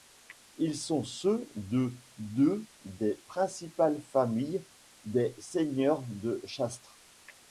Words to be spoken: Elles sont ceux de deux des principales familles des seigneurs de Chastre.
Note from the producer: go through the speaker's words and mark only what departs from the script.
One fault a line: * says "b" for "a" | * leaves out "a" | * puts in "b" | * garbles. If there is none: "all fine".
* says "Ils" for "Elles"